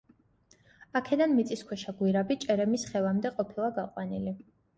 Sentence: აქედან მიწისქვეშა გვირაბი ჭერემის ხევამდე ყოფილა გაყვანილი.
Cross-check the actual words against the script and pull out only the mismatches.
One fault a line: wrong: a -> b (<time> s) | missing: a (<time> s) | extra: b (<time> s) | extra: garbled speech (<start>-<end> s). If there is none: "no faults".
no faults